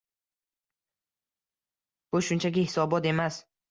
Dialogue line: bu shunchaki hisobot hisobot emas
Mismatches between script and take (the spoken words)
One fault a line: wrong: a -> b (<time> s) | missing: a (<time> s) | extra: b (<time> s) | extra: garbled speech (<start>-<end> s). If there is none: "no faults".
missing: hisobot (3.1 s)